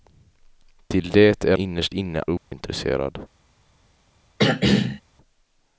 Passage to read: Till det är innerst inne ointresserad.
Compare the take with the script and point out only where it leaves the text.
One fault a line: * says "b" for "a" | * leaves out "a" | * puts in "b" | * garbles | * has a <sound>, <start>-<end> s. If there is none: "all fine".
* has a dropout, 2.4-2.5 s
* has a throat clearing, 4.4-5.0 s